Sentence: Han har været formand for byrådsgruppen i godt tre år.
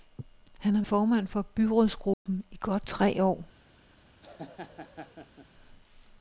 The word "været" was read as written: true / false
false